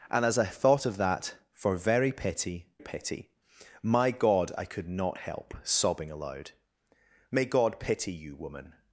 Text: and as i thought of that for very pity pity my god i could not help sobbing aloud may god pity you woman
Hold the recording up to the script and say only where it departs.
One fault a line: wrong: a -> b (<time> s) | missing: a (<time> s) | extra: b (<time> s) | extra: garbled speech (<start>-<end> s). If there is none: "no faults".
no faults